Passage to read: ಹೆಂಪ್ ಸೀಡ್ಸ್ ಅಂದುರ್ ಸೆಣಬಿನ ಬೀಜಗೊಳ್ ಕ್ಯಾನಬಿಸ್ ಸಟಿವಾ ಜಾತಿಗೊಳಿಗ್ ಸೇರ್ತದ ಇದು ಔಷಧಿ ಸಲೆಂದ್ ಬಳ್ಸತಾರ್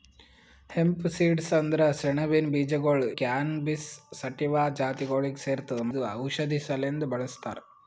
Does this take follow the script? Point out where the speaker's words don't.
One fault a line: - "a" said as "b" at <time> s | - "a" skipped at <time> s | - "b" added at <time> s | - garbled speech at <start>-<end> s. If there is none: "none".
none